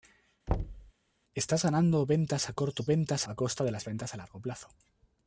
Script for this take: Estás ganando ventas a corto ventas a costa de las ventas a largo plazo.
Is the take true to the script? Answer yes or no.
yes